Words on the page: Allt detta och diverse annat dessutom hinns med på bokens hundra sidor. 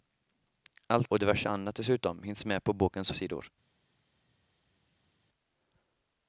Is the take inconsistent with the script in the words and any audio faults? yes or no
yes